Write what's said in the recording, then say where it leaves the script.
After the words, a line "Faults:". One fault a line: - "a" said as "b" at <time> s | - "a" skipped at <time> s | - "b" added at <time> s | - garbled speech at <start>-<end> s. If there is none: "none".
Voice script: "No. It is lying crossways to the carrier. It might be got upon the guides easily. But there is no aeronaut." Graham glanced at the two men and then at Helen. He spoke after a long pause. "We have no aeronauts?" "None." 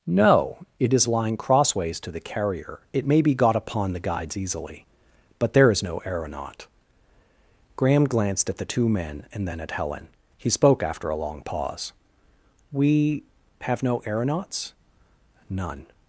"No. It is lying crossways to the carrier. It may be got upon the guides easily. But there is no aeronaut." Graham glanced at the two men and then at Helen. He spoke after a long pause. "We have no aeronauts?" "None."
Faults:
- "might" said as "may" at 3.0 s